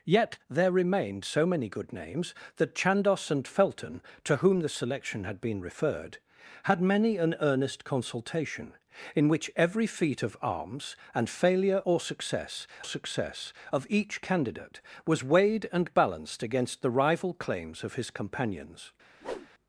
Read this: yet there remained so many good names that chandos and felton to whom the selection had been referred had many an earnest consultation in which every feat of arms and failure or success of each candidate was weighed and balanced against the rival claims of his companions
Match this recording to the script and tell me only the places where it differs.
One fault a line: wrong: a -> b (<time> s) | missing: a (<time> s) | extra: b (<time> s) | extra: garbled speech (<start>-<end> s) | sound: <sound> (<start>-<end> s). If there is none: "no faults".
extra: success (12.8 s)
sound: whoosh (19.2-19.5 s)